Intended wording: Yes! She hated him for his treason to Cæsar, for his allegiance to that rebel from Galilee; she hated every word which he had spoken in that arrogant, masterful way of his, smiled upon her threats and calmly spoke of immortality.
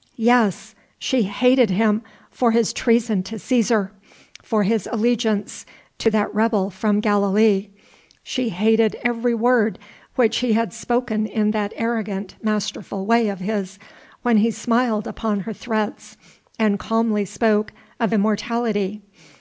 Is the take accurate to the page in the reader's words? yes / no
no